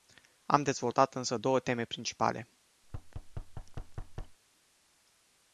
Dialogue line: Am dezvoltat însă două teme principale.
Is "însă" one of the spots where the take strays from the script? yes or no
no